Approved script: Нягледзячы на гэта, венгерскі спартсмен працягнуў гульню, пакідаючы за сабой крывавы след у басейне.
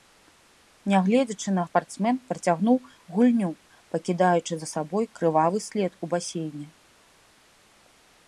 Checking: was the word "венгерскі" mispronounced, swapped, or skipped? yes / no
yes